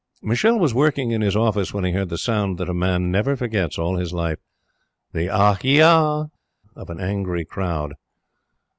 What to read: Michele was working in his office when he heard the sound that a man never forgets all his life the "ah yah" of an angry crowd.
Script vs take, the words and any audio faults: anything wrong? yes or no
no